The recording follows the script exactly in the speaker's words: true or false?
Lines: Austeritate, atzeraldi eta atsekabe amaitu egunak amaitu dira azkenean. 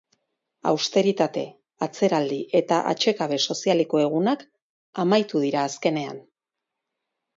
false